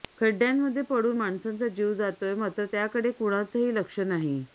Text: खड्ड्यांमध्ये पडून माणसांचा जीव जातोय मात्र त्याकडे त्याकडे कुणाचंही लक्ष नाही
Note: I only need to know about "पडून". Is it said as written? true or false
true